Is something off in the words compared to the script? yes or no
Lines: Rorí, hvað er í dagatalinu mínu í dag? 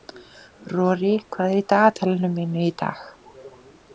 no